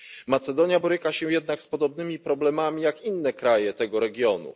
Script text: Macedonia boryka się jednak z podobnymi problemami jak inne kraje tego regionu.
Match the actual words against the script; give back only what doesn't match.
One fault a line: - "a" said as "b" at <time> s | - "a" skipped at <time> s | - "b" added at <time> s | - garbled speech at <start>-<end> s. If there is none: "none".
none